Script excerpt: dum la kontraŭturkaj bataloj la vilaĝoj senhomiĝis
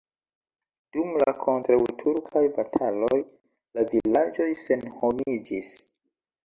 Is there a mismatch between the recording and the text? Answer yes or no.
no